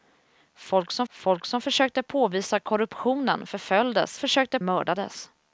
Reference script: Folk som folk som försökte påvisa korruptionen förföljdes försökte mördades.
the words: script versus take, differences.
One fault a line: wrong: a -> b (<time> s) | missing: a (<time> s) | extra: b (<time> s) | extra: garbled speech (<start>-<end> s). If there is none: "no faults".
no faults